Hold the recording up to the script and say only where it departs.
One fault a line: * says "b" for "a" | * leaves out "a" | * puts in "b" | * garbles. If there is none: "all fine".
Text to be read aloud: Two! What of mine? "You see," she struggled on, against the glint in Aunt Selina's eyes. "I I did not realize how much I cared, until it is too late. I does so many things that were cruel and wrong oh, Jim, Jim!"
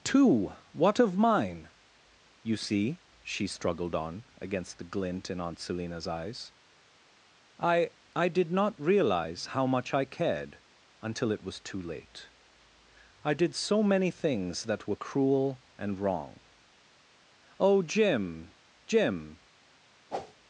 * says "was" for "is"
* says "did" for "does"